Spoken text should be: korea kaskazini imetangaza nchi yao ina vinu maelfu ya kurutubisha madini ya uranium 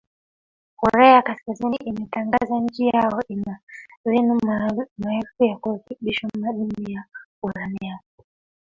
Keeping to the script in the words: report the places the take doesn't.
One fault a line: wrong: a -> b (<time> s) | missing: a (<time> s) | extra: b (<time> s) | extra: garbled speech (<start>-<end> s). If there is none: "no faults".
no faults